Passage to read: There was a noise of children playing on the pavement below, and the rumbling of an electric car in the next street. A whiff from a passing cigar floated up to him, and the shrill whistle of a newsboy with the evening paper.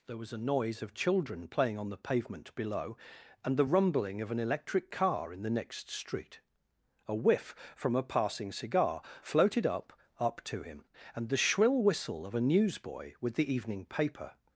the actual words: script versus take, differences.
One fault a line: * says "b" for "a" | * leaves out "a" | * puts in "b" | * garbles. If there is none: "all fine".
* puts in "up"